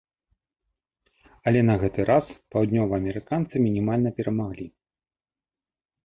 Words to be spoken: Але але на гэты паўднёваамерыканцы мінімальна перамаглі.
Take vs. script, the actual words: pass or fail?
fail